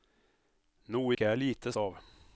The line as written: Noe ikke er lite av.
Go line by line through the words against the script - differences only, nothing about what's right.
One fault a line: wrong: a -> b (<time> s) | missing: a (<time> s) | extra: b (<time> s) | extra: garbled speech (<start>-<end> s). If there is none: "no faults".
no faults